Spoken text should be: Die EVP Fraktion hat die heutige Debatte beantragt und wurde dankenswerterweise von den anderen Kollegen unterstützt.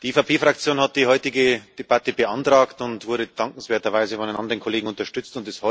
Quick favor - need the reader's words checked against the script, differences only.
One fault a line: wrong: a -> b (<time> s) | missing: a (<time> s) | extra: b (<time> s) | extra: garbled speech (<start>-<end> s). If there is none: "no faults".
no faults